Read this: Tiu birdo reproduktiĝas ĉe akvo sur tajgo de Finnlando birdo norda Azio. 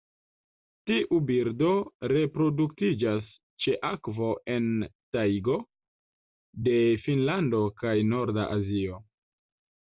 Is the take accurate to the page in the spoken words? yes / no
no